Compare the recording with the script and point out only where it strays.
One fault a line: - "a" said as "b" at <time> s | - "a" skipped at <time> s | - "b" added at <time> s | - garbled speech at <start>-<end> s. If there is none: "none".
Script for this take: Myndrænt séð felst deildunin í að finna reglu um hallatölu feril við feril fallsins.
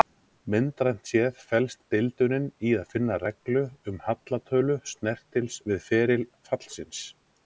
- "feril" said as "snertils" at 4.9 s